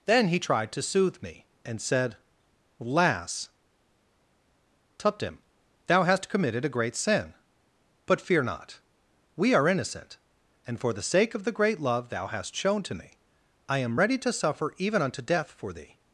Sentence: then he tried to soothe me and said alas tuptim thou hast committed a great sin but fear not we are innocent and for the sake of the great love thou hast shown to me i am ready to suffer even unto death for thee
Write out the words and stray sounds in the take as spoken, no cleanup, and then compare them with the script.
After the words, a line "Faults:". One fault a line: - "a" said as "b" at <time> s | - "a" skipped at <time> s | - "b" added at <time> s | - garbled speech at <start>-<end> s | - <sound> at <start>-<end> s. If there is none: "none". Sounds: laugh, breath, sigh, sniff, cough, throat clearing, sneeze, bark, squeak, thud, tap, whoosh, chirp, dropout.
then he tried to soothe me and said lass tuptim thou hast committed a great sin but fear not we are innocent and for the sake of the great love thou hast shown to me i am ready to suffer even unto death for thee
Faults:
- "alas" said as "lass" at 2.8 s